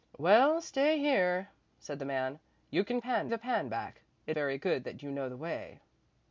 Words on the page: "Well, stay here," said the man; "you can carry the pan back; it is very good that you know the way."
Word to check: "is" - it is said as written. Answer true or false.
false